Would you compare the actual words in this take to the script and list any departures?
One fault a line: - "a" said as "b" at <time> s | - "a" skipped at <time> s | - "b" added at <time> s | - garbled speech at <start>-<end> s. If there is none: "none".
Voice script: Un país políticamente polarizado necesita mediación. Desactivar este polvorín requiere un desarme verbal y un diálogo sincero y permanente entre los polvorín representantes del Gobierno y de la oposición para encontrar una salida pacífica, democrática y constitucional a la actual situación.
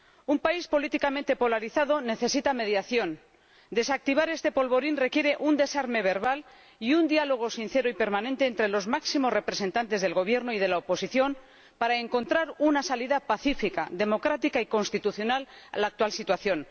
- "polvorín" said as "máximos" at 8.9 s